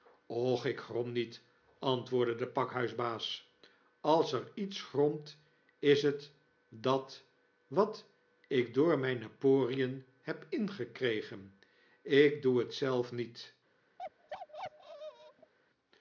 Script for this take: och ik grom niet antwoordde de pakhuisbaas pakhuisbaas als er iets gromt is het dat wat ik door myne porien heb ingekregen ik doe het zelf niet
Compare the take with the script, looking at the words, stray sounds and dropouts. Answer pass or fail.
fail